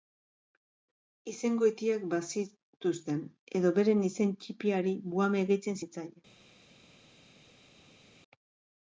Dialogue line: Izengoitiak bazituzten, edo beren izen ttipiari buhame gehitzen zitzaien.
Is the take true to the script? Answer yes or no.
yes